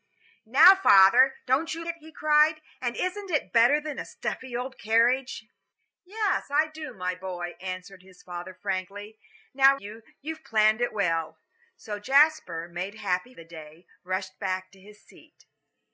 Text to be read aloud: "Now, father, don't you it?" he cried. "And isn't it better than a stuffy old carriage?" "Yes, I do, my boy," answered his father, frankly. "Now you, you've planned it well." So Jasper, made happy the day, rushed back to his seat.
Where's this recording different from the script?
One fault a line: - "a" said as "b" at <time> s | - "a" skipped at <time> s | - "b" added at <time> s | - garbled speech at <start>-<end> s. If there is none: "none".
none